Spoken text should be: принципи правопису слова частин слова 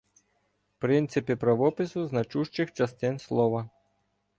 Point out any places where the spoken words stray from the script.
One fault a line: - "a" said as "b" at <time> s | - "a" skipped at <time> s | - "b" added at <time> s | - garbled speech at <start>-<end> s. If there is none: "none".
- "слова" said as "значущих" at 2.1 s